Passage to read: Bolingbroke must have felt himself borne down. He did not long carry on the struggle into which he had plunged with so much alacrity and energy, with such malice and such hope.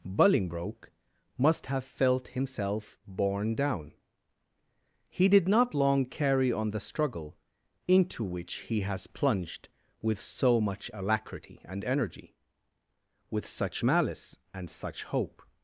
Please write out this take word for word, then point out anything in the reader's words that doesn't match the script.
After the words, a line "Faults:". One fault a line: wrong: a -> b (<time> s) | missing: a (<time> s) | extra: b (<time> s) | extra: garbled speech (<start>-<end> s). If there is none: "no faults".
Bolingbroke must have felt himself borne down. He did not long carry on the struggle into which he has plunged with so much alacrity and energy, with such malice and such hope.
Faults:
wrong: had -> has (8.8 s)